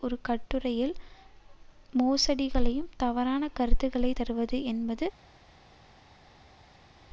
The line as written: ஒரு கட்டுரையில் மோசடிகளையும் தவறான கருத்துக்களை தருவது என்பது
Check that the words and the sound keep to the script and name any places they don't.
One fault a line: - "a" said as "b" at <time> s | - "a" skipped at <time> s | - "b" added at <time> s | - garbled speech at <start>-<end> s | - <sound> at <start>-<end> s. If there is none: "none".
none